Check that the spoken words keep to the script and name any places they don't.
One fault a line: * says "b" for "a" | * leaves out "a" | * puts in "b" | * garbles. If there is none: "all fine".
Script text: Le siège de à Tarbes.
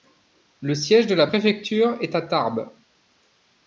* puts in "la préfecture est"